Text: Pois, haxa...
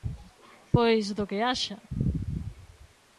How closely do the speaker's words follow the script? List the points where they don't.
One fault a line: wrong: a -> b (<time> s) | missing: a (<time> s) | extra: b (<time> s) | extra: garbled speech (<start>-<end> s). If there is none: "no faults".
extra: do que (1.1 s)